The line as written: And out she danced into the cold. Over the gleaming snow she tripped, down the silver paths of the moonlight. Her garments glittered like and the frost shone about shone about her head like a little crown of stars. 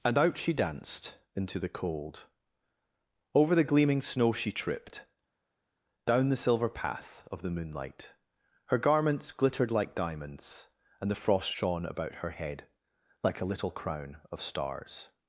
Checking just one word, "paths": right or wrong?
wrong